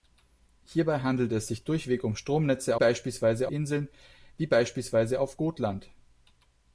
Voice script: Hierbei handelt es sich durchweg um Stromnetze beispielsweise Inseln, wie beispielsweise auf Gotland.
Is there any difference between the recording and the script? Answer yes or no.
no